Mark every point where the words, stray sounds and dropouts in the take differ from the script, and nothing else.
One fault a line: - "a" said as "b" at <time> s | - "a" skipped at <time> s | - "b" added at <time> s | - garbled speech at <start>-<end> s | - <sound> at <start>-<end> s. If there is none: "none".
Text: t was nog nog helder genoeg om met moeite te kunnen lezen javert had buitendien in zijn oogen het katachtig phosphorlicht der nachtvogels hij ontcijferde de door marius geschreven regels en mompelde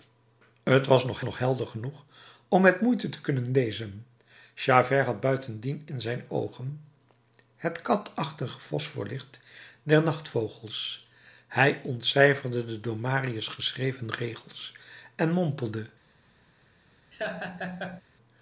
- laugh at 17.1-18.0 s